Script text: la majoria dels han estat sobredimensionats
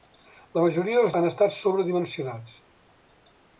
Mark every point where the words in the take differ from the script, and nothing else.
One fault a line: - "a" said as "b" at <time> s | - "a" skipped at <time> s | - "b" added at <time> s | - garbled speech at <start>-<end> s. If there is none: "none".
none